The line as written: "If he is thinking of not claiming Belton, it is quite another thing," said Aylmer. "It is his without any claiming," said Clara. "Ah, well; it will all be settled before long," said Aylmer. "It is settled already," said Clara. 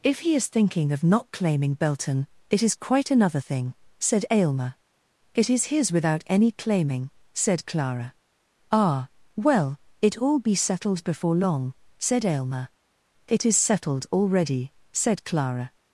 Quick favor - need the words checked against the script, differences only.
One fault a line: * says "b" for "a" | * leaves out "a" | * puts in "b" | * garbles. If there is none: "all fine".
* leaves out "will"